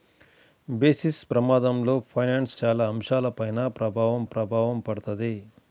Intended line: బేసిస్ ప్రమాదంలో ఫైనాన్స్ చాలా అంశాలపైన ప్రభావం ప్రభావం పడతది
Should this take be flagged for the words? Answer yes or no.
no